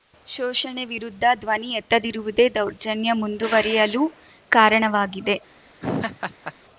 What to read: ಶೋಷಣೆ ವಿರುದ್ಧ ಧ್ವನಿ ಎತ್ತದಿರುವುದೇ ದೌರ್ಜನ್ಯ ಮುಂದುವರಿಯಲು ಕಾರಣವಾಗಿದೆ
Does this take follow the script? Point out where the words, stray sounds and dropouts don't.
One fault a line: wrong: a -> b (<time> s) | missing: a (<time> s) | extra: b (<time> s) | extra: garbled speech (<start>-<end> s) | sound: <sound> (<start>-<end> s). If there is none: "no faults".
sound: laugh (5.8-6.5 s)